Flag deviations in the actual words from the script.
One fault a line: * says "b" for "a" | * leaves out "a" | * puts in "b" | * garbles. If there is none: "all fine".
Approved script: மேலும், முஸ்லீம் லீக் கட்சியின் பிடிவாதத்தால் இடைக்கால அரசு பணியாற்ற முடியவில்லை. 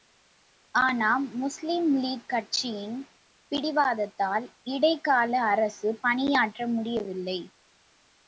* says "ஆனால்" for "மேலும்"